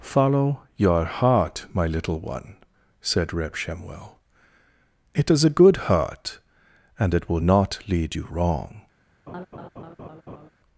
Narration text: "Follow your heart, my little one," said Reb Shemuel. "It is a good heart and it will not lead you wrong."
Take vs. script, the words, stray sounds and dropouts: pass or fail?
fail